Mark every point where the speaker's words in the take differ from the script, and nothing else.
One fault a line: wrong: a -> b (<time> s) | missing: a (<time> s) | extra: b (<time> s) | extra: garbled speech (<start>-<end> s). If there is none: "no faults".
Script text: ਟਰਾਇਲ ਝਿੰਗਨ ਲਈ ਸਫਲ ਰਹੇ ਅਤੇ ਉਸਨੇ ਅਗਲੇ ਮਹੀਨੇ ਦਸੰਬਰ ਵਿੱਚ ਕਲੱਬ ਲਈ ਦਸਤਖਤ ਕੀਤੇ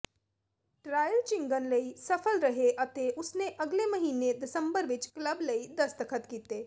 no faults